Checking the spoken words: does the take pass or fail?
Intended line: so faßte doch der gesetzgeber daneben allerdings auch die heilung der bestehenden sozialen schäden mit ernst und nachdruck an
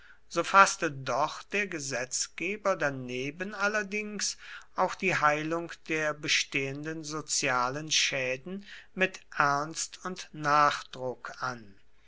pass